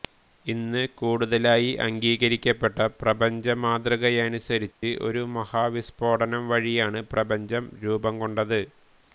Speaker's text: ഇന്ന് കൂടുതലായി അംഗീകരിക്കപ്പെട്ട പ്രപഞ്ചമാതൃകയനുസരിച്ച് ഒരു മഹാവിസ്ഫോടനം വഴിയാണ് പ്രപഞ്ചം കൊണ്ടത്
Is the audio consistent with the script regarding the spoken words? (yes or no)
no